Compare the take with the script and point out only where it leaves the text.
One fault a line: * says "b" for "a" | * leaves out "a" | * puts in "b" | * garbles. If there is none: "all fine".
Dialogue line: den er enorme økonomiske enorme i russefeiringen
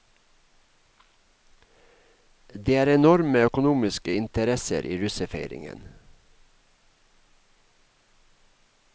* says "det" for "den"
* says "interesser" for "enorme"